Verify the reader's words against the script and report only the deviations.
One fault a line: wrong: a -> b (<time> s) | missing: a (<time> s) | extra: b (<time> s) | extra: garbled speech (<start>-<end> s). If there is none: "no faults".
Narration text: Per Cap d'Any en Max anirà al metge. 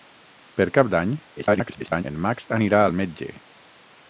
extra: garbled speech (1.4-2.0 s)